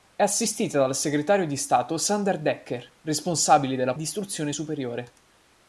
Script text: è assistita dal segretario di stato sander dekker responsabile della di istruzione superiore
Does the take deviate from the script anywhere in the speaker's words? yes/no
no